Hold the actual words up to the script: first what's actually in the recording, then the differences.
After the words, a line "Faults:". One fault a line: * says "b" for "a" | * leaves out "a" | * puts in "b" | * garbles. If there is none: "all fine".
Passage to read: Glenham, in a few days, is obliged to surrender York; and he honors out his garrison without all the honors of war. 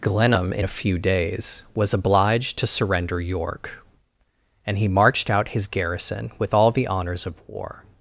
Glenham, in a few days, was obliged to surrender York; and he marched out his garrison with all the honors of war.
Faults:
* says "was" for "is"
* says "marched" for "honors"
* says "with" for "without"